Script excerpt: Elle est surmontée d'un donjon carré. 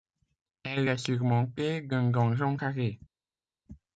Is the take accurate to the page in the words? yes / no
yes